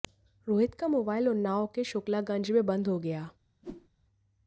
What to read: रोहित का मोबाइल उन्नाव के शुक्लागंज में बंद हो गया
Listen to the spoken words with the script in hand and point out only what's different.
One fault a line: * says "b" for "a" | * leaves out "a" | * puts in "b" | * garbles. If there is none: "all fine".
all fine